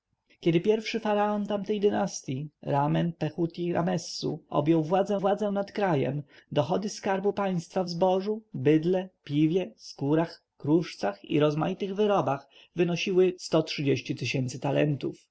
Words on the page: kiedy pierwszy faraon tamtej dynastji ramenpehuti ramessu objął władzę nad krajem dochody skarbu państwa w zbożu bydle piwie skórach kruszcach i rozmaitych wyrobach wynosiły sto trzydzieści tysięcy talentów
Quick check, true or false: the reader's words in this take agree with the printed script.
false